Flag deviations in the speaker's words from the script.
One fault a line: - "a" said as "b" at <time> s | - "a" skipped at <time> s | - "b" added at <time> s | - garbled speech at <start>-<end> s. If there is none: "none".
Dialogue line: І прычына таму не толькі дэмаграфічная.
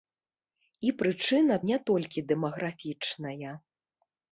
- "таму" skipped at 1.6 s